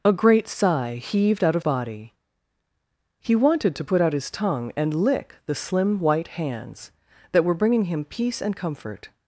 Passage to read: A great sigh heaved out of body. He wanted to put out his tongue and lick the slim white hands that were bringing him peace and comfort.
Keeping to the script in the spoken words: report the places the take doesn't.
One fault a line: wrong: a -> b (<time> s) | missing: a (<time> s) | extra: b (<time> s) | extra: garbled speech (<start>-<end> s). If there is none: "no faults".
no faults